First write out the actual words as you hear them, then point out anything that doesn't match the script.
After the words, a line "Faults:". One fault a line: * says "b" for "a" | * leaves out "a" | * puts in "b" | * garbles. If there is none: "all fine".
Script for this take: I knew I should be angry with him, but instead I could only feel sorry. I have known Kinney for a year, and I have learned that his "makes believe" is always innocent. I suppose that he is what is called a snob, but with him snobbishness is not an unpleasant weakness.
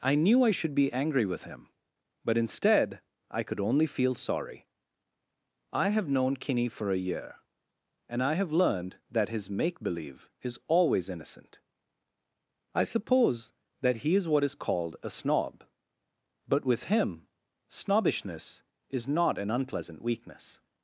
I knew I should be angry with him, but instead I could only feel sorry. I have known Kinney for a year, and I have learned that his "make believe" is always innocent. I suppose that he is what is called a snob, but with him snobbishness is not an unpleasant weakness.
Faults:
* says "make" for "makes"